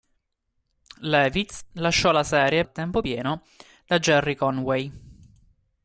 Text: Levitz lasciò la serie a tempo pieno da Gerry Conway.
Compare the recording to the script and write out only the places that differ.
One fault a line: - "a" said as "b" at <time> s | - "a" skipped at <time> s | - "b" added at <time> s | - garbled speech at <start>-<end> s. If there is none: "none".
none